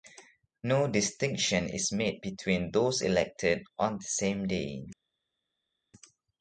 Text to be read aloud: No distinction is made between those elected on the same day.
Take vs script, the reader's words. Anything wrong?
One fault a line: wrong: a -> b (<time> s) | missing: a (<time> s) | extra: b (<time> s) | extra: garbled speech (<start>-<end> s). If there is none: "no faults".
no faults